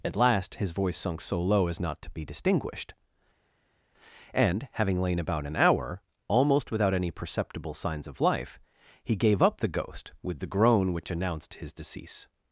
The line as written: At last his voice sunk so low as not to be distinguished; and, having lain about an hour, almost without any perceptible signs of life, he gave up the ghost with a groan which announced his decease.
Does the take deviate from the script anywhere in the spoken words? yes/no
yes